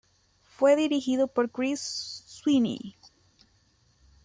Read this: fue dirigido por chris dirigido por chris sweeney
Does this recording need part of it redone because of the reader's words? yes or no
yes